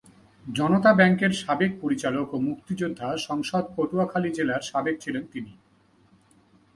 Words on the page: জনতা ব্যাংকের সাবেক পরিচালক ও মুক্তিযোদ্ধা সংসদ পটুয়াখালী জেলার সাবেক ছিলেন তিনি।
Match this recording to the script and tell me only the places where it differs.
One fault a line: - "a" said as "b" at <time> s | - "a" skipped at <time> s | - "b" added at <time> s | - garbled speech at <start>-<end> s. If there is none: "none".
none